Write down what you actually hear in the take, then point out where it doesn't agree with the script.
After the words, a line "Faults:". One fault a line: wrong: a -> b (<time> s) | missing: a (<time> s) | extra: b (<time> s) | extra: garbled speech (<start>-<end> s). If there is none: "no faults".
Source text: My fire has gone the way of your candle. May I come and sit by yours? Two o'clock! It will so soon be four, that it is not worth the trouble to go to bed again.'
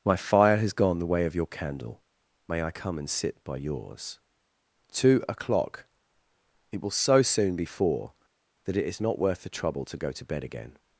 My fire has gone the way of your candle. May I come and sit by yours? Two o'clock! It will so soon be four, that it is not worth the trouble to go to bed again.'
Faults:
no faults